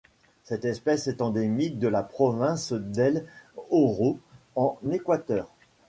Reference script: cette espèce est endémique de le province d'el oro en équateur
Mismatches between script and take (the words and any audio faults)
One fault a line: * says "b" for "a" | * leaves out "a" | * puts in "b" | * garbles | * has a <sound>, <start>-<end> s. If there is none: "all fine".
* says "la" for "le"